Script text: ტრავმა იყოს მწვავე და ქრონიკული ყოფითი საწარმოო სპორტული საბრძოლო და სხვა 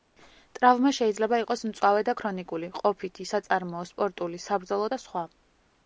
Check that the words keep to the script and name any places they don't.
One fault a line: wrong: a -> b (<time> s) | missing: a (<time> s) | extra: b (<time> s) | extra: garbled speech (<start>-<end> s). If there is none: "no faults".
extra: შეიძლება (1.0 s)